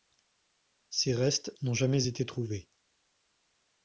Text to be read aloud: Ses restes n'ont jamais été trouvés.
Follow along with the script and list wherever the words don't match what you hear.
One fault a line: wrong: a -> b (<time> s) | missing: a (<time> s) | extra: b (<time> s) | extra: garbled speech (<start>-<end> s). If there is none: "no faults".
no faults